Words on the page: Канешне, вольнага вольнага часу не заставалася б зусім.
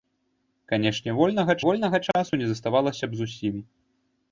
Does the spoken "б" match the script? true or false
true